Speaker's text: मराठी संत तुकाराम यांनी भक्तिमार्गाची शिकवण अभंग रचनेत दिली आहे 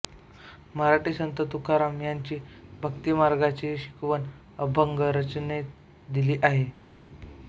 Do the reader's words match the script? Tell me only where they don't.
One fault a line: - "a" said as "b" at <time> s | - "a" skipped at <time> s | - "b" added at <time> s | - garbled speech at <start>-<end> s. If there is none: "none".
none